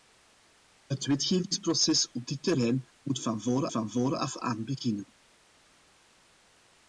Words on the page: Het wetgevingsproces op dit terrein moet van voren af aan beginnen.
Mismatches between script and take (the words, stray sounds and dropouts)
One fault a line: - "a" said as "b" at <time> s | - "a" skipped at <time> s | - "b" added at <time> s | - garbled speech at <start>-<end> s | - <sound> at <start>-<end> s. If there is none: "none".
- "van voren" added at 3.7 s